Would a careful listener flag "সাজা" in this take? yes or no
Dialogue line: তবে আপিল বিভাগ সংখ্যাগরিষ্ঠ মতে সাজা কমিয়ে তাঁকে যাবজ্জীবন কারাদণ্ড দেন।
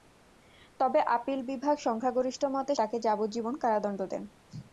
yes